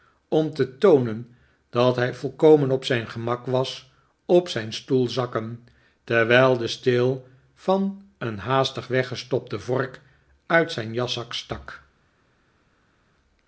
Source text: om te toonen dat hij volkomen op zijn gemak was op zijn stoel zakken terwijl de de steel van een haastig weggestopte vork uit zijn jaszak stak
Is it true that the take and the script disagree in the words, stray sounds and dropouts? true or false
true